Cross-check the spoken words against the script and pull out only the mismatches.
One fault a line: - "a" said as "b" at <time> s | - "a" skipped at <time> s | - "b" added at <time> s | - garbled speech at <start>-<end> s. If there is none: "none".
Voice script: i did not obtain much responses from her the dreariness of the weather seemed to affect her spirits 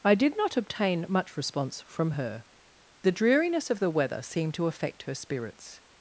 - "responses" said as "response" at 1.3 s